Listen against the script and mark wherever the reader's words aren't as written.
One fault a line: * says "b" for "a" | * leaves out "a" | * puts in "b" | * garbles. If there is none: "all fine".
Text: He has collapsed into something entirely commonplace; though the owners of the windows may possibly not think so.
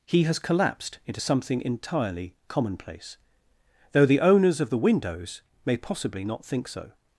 all fine